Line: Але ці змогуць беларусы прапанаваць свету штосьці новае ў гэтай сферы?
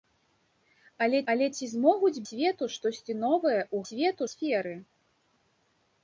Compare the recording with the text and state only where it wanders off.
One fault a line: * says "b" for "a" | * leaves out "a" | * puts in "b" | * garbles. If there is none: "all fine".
* puts in "але"
* leaves out "беларусы прапанаваць"
* says "свету" for "гэтай"